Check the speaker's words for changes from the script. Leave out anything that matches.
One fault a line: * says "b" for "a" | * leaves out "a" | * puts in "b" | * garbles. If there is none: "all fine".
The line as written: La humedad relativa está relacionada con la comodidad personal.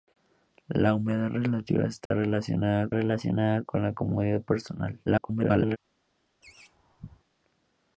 * puts in "relacionada"
* garbles